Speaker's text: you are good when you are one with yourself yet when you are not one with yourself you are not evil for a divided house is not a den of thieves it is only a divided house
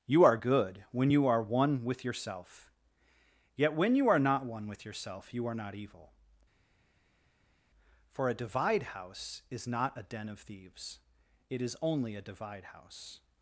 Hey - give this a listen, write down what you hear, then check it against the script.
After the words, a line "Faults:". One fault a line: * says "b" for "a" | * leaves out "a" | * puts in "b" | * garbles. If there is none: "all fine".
you are good when you are one with yourself yet when you are not one with yourself you are not evil for a divide house is not a den of thieves it is only a divide house
Faults:
* says "divide" for "divided"
* says "divide" for "divided"